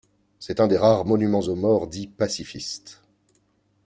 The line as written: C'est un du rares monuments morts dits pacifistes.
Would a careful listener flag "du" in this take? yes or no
yes